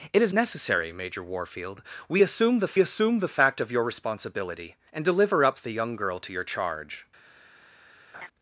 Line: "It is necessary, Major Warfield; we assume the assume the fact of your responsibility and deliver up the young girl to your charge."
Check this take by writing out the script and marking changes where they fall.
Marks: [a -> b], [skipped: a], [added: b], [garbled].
"It is necessary, Major Warfield; we assume the assume the fact of your responsibility and deliver up the young girl to your charge."